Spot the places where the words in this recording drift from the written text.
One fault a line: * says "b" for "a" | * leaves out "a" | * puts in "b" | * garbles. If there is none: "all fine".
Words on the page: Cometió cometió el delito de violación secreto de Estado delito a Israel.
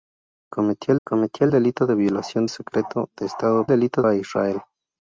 all fine